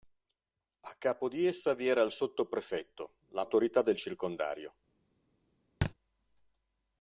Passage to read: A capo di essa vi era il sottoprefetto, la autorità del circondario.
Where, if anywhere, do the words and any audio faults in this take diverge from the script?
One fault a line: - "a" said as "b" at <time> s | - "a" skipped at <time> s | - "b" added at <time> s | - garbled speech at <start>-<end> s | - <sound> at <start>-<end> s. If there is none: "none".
- thud at 5.8-5.9 s